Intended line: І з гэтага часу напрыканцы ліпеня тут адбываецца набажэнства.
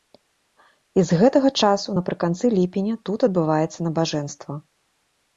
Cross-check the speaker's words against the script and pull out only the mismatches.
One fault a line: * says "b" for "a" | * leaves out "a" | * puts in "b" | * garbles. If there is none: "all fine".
all fine